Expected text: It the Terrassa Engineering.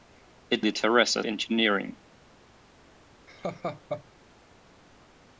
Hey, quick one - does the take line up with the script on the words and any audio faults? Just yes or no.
no